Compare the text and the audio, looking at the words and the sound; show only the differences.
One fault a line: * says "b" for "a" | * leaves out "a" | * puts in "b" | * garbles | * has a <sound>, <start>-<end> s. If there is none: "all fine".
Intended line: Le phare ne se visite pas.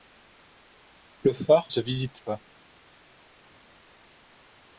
* leaves out "ne"